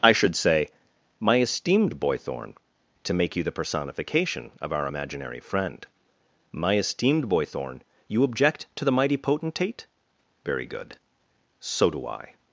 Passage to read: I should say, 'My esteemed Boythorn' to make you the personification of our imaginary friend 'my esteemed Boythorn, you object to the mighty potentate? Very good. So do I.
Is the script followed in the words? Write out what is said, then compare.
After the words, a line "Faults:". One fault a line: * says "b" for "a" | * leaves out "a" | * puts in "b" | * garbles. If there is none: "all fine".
I should say, 'My esteemed Boythorn' to make you the personification of our imaginary friend 'my esteemed Boythorn, you object to the mighty potentate? Very good. So do I.
Faults:
all fine